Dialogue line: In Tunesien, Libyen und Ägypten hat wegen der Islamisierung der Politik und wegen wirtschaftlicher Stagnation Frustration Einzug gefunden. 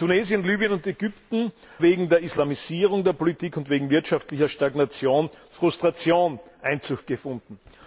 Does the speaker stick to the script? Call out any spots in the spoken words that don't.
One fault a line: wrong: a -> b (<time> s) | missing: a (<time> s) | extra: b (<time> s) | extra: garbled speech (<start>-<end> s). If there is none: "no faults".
missing: hat (1.5 s)